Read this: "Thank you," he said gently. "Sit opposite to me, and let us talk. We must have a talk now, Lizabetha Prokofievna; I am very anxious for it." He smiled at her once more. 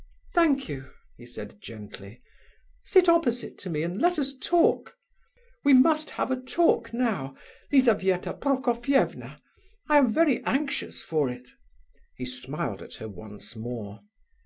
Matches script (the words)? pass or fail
pass